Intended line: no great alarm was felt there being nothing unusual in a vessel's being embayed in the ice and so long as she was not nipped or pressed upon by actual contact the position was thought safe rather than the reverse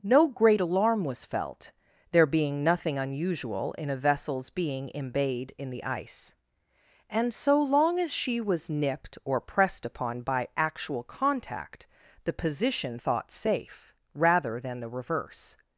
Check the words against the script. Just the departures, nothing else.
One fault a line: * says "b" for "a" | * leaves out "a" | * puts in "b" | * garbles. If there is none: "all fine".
* leaves out "not"
* leaves out "was"